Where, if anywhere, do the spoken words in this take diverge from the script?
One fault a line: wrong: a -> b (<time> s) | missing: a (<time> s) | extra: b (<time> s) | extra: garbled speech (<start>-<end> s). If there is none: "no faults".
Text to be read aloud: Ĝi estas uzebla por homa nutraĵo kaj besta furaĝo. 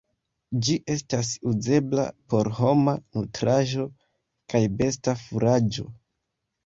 no faults